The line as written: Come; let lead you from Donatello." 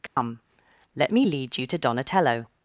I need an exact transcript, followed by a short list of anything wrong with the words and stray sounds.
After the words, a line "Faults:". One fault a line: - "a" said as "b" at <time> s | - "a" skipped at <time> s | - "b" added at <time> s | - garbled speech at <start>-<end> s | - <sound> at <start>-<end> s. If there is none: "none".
Come; let me lead you to Donatello."
Faults:
- dropout at 0.1-0.2 s
- "me" added at 1.1 s
- "from" said as "to" at 1.7 s